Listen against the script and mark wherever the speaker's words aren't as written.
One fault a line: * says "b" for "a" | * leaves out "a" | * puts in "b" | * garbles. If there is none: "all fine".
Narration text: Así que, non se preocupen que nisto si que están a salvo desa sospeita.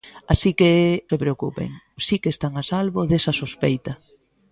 * leaves out "non"
* leaves out "que nisto"